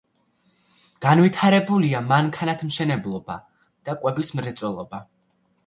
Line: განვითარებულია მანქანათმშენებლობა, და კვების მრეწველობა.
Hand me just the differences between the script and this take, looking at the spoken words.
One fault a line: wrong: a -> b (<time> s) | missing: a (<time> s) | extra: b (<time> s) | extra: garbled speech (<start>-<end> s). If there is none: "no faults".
no faults